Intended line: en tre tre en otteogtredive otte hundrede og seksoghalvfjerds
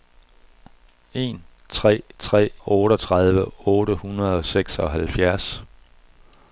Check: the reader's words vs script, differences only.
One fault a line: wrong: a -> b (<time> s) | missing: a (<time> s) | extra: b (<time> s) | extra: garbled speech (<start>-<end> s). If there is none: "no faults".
missing: en (2.5 s)